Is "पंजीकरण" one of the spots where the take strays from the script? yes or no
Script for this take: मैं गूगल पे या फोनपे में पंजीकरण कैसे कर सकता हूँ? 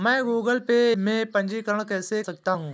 no